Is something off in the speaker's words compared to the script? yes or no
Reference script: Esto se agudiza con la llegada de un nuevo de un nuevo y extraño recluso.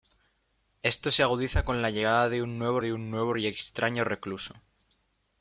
no